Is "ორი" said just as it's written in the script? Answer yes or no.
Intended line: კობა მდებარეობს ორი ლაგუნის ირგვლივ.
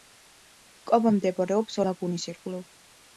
no